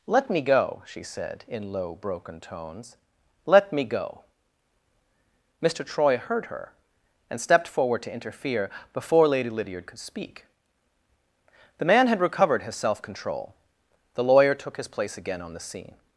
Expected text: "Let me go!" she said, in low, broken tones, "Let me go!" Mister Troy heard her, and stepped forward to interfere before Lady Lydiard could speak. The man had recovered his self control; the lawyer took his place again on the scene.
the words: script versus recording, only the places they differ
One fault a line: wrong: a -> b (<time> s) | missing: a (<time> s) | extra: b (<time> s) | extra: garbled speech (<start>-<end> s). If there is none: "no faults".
no faults